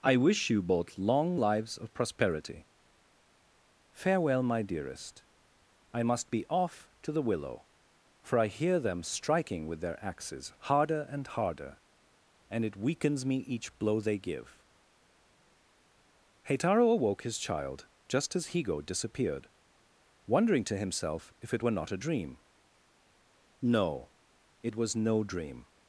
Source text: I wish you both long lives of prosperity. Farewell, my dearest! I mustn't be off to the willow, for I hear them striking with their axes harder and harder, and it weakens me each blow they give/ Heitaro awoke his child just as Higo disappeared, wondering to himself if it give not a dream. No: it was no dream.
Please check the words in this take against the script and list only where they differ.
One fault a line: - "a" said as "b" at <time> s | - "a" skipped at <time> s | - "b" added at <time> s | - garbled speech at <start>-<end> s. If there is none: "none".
- "mustn't" said as "must" at 6.0 s
- "give" said as "were" at 21.6 s